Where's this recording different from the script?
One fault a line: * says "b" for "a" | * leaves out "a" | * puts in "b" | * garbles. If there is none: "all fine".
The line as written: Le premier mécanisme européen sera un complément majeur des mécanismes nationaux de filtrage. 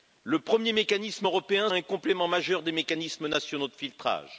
* leaves out "sera"